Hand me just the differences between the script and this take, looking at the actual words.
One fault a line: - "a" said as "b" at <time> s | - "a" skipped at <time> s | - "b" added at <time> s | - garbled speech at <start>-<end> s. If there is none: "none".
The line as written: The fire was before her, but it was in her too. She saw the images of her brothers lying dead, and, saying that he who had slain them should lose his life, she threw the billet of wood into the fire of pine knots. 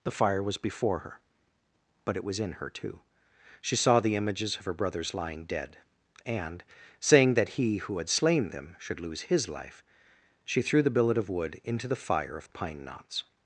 none